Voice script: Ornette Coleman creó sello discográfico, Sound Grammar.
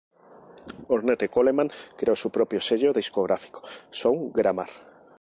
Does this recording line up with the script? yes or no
no